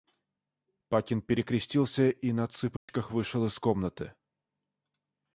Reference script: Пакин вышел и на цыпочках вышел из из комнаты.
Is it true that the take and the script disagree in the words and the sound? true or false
true